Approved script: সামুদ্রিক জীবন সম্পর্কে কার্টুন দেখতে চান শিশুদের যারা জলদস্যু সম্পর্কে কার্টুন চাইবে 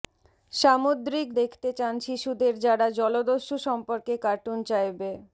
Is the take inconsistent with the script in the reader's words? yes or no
yes